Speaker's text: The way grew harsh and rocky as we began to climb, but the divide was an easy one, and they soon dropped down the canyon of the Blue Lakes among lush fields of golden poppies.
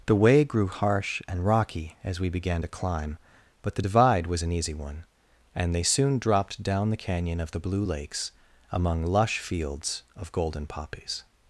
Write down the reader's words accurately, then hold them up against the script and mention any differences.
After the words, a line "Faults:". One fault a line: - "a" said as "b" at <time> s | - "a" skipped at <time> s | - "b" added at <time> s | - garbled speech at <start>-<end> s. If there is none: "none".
The way grew harsh and rocky as we began to climb, but the divide was an easy one, and they soon dropped down the canyon of the Blue Lakes among lush fields of golden poppies.
Faults:
none